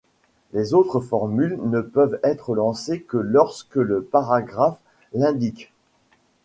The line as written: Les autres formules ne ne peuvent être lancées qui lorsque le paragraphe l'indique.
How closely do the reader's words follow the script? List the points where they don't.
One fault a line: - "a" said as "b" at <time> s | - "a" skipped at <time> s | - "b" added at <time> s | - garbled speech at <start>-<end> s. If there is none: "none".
- "ne" skipped at 1.8 s
- "qui" said as "que" at 3.0 s